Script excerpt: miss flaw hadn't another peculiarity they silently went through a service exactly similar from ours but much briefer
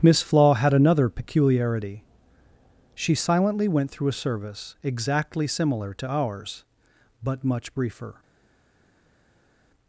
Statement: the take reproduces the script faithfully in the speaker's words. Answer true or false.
false